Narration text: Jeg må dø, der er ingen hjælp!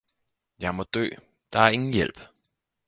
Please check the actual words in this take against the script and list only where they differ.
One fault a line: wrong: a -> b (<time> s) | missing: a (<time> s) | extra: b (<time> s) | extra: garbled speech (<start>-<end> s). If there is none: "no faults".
no faults